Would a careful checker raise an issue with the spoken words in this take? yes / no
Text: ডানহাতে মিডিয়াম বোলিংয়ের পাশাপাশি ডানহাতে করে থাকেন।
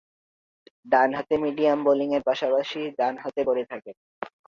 no